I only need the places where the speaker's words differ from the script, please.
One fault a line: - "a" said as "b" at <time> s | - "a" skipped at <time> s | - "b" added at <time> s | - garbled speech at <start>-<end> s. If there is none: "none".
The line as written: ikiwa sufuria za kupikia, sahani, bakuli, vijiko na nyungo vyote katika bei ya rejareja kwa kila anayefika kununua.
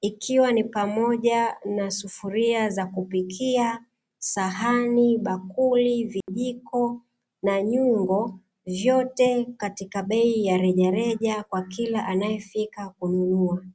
- "ni pamoja na" added at 0.5 s